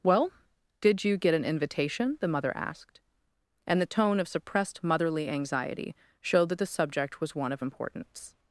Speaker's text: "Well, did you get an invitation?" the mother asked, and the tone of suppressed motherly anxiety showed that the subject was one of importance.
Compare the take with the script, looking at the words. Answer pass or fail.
pass